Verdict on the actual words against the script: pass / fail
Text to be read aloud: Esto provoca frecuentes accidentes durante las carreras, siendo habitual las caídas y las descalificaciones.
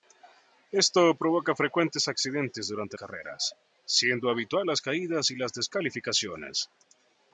fail